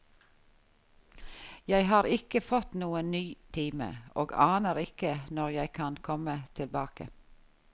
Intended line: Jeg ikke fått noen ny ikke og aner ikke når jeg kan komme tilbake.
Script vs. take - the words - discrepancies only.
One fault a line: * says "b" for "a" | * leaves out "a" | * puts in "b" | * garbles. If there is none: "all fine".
* puts in "har"
* says "time" for "ikke"